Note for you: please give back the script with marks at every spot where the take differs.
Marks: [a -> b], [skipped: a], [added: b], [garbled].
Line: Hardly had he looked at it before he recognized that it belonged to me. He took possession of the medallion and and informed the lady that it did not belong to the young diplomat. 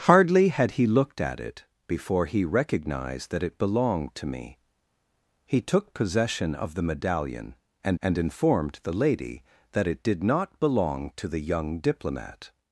Hardly had he looked at it before he recognized that it belonged to me. He took possession of the medallion and and informed the lady that it did not belong to the young diplomat.